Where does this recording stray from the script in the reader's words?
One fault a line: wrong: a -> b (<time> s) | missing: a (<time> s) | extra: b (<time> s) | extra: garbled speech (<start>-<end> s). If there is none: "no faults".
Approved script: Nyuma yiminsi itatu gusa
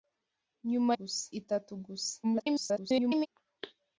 wrong: yiminsi -> gusa (1.0 s)
extra: garbled speech (2.2-3.3 s)